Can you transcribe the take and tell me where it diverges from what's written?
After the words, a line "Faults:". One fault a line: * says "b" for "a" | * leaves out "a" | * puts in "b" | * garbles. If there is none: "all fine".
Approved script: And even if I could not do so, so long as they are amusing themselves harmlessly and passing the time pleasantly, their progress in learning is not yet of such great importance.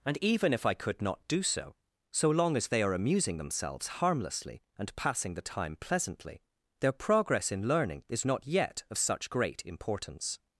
And even if I could not do so, so long as they are amusing themselves harmlessly and passing the time pleasantly, their progress in learning is not yet of such great importance.
Faults:
all fine